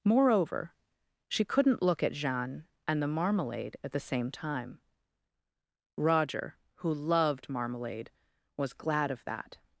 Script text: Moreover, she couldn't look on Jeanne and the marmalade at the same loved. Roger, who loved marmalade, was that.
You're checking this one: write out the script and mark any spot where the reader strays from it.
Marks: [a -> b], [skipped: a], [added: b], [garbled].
Moreover, she couldn't look [on -> at] Jeanne and the marmalade at the same [loved. -> time] Roger, who loved marmalade, was [added: glad of] that.